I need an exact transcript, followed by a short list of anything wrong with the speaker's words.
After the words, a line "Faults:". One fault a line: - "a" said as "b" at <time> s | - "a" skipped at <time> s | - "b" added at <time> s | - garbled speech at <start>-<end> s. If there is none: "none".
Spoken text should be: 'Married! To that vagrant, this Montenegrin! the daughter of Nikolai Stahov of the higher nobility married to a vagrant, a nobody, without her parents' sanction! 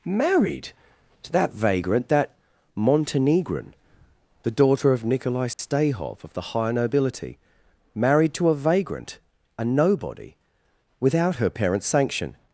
'Married! To that vagrant, that Montenegrin! the daughter of Nikolai Stahov of the higher nobility married to a vagrant, a nobody, without her parents' sanction!
Faults:
- "this" said as "that" at 2.1 s